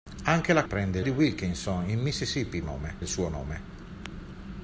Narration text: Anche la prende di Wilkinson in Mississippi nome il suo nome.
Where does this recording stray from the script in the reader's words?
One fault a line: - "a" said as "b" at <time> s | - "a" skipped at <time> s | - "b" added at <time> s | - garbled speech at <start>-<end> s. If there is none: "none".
none